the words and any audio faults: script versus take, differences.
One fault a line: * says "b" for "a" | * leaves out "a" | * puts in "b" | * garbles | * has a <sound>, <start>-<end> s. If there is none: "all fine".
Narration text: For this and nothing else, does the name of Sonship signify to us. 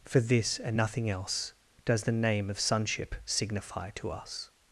all fine